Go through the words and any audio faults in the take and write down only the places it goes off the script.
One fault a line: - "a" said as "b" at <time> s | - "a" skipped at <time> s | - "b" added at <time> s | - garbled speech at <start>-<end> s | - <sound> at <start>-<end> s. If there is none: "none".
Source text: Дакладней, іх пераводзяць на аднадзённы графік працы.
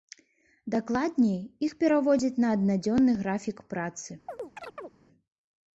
- chirp at 4.3-4.9 s